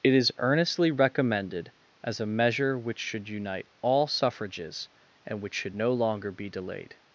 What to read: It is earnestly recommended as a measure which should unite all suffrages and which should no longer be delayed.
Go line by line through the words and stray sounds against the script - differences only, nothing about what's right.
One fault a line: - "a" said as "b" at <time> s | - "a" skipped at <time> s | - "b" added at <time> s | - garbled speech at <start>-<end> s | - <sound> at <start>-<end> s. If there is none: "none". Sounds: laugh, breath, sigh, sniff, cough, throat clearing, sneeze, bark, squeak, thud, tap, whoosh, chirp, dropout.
none